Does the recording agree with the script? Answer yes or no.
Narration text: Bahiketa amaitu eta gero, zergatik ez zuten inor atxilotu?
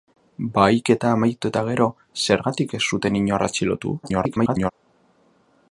no